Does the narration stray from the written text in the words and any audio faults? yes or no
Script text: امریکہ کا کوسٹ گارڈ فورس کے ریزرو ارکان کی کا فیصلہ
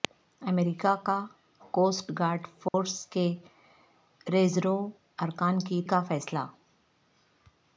yes